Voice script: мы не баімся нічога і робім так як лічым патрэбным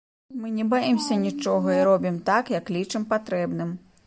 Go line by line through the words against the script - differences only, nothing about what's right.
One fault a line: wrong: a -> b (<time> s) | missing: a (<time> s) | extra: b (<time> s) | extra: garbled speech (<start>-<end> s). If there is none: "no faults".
no faults